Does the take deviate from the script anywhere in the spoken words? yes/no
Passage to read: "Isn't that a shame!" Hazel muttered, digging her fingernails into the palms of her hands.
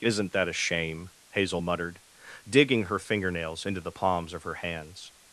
no